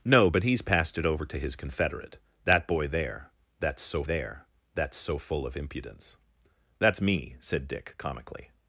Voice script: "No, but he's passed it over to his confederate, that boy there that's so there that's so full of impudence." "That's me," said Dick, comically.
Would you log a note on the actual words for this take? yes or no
no